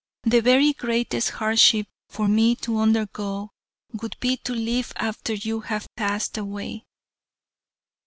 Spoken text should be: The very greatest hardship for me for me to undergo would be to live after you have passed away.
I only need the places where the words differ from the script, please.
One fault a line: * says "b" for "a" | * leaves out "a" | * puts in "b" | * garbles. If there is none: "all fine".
* leaves out "for me"